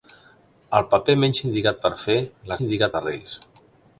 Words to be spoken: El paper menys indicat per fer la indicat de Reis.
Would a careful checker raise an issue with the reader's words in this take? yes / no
no